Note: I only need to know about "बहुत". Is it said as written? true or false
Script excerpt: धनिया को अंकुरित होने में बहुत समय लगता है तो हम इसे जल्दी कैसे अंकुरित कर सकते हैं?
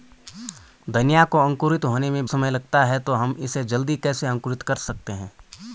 false